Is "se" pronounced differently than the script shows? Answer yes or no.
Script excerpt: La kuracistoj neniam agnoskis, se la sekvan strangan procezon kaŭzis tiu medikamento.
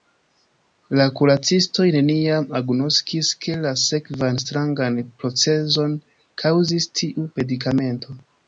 yes